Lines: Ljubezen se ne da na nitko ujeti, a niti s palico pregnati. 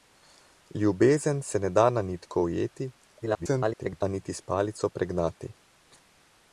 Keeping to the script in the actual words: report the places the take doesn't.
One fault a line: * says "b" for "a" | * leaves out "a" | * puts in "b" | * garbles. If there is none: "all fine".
* garbles